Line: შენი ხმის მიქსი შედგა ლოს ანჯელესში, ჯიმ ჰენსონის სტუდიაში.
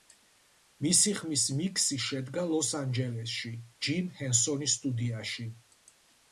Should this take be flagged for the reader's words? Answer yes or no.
yes